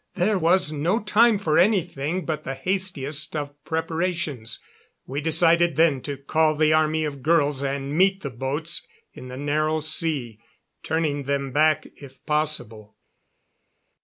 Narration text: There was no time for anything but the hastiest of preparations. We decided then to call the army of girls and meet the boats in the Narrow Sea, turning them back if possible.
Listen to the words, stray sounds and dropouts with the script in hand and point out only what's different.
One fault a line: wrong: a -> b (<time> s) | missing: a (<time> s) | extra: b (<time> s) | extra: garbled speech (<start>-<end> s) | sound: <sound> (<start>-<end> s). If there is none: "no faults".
no faults